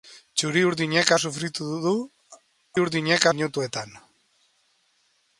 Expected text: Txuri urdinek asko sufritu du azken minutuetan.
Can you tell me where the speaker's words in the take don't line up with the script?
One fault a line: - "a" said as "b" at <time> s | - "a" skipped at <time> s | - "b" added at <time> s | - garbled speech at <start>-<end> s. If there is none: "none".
- "asko" skipped at 1.1 s
- "azken" said as "urdinek" at 2.8 s